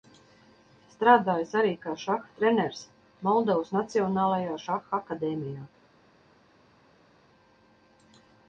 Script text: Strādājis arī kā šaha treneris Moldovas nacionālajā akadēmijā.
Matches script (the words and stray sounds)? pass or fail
fail